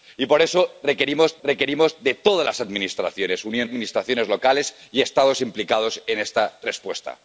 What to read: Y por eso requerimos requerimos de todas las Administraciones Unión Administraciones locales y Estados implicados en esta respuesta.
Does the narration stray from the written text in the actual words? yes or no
no